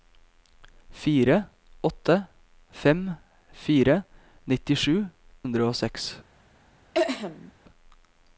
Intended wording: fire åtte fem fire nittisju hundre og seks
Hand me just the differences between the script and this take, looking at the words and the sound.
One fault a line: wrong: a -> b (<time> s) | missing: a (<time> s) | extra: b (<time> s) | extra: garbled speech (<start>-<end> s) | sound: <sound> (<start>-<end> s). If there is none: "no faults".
sound: throat clearing (6.9-7.5 s)